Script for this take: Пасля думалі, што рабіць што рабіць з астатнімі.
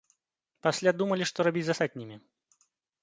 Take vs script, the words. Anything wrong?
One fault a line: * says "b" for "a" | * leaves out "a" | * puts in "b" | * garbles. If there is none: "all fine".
* leaves out "што рабіць"